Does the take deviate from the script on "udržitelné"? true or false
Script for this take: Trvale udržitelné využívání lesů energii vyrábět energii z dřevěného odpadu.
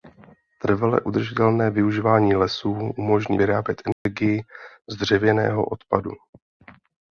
false